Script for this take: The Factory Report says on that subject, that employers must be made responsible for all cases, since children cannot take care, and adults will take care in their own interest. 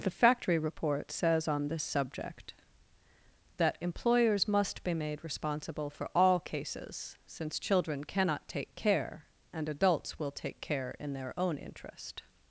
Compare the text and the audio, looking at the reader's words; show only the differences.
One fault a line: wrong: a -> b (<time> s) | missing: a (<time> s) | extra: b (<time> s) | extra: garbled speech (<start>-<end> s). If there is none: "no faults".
wrong: that -> this (1.7 s)